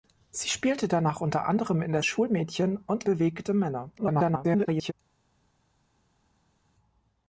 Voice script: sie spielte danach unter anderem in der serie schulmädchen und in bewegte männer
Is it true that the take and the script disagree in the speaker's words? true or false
true